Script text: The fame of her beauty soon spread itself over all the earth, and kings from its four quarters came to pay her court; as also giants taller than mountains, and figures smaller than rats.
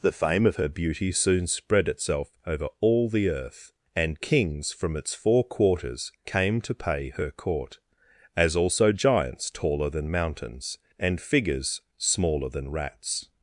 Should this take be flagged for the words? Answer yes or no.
no